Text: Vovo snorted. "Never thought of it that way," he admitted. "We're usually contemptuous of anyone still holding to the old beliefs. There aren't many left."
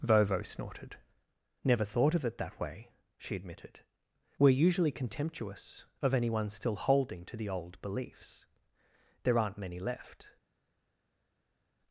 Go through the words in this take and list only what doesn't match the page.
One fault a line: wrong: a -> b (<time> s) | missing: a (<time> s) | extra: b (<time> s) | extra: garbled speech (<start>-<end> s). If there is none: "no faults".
wrong: he -> she (3.2 s)